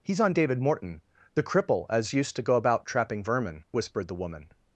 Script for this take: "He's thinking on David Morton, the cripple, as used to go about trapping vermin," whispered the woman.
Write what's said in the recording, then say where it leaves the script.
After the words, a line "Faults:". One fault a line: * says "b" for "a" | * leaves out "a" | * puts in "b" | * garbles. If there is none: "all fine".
"He's on David Morton, the cripple, as used to go about trapping vermin," whispered the woman.
Faults:
* leaves out "thinking"